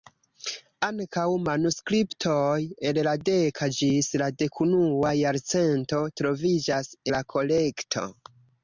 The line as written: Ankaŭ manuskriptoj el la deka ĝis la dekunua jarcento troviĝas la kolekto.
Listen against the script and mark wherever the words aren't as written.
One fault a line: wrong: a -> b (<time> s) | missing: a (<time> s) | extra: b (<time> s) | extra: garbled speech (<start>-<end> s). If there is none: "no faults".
no faults